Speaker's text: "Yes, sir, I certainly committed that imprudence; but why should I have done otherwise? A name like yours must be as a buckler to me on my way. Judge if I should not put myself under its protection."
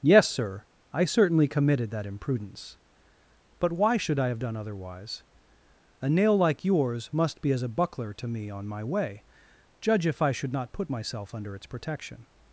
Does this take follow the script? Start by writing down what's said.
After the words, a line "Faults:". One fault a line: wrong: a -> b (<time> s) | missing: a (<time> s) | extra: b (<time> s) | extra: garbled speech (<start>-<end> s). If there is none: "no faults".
"Yes, sir, I certainly committed that imprudence; but why should I have done otherwise? A nail like yours must be as a buckler to me on my way. Judge if I should not put myself under its protection."
Faults:
wrong: name -> nail (6.1 s)